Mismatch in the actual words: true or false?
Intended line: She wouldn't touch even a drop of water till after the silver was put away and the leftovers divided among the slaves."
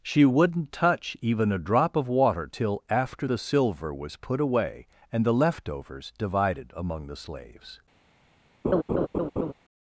false